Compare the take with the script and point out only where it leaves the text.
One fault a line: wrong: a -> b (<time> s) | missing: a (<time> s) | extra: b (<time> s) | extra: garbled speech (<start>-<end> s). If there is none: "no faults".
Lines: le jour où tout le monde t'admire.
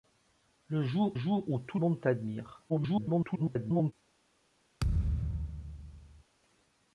extra: jour (1.1 s)
missing: le (1.8 s)
extra: garbled speech (2.7-3.9 s)